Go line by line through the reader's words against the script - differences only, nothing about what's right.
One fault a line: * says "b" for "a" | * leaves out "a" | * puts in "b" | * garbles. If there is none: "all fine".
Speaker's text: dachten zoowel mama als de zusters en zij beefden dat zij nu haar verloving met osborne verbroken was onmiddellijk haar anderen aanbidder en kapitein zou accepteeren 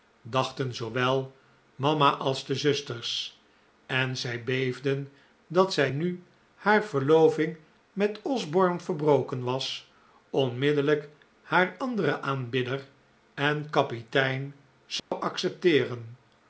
all fine